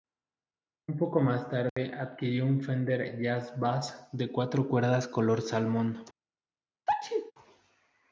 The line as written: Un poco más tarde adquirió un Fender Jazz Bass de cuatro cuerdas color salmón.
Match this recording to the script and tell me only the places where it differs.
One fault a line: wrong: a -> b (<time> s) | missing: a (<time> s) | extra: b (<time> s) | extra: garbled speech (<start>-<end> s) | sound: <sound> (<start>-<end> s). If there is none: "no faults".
sound: dropout (1.7-1.8 s)
sound: sneeze (6.9-7.3 s)